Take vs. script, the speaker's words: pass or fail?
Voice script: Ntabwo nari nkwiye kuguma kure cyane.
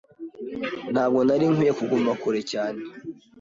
pass